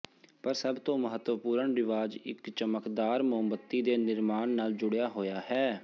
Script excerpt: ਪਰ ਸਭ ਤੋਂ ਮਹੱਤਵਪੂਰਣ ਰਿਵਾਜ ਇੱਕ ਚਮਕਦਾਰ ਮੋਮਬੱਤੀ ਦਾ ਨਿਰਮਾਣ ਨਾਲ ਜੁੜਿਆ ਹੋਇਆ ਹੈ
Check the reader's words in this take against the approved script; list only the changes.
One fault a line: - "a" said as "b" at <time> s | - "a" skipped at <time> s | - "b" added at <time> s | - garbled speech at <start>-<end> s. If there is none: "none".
- "ਦਾ" said as "ਦੇ" at 3.8 s